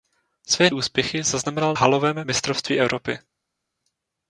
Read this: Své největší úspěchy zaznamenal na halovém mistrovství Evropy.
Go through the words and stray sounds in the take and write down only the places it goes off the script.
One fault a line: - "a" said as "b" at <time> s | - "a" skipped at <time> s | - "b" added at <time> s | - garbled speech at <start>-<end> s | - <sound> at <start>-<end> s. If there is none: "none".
- "největší" skipped at 0.7 s
- "na" skipped at 1.7 s